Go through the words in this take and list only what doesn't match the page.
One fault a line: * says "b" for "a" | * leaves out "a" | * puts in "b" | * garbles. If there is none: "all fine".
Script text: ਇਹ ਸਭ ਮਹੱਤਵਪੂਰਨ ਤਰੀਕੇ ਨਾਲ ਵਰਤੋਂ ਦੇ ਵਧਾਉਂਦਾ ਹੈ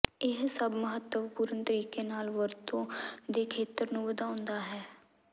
* puts in "ਖੇਤਰ ਨੂੰ"